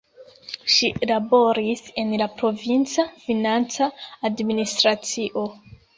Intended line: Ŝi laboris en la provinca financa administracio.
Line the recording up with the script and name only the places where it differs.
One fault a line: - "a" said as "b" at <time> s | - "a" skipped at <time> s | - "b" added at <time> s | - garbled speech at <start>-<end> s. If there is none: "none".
none